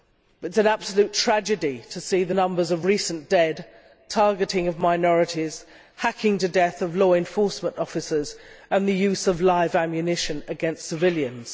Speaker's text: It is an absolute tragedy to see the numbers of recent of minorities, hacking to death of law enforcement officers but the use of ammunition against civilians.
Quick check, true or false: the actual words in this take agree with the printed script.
false